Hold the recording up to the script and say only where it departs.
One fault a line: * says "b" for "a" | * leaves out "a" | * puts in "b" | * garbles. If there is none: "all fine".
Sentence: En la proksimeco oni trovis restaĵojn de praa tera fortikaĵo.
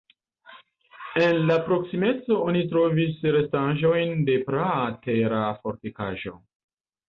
all fine